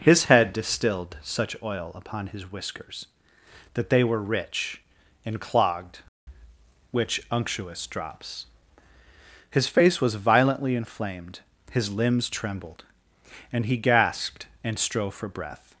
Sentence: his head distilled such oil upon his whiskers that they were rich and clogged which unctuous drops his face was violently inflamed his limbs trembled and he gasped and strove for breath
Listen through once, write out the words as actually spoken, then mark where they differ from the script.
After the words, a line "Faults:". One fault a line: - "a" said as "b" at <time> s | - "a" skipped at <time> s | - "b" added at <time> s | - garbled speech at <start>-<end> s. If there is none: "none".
his head distilled such oil upon his whiskers that they were rich and clogged which unctuous drops his face was violently inflamed his limbs trembled and he gasped and strove for breath
Faults:
none